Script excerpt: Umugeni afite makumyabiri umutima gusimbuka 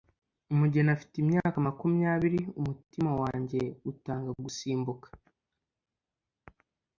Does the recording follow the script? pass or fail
fail